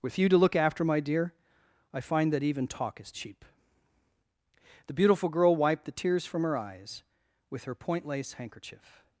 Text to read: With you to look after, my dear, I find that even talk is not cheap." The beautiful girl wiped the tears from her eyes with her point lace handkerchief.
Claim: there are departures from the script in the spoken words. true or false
true